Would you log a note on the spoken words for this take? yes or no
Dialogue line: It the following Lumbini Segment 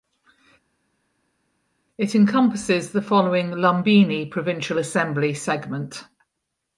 yes